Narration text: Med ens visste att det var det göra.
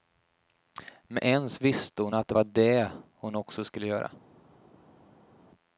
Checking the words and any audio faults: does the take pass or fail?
fail